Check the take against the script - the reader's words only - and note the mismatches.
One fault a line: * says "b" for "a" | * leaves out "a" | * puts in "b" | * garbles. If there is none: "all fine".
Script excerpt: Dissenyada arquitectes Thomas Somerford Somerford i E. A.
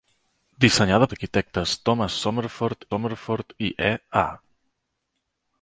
all fine